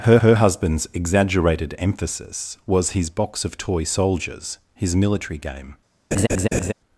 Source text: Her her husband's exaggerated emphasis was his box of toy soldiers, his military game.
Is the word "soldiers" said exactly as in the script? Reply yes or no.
yes